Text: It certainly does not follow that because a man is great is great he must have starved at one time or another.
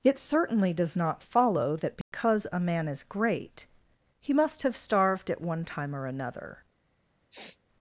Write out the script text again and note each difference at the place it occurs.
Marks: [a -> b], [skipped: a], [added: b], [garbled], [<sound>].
It certainly does not follow that because [dropout] a man is great [skipped: is great] he must have starved at one time or another. [sniff]